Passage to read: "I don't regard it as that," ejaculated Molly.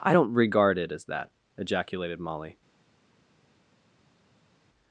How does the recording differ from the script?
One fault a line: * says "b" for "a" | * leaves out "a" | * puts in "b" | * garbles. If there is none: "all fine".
all fine